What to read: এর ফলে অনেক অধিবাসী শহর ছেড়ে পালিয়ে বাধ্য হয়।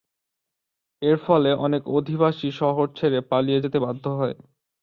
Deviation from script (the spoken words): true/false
true